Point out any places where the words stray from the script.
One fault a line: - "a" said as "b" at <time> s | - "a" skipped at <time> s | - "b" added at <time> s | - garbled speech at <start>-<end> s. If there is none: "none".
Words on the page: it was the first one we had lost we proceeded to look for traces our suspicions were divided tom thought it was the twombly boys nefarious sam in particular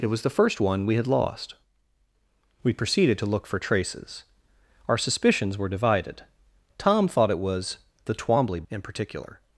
- "boys nefarious sam" skipped at 8.6 s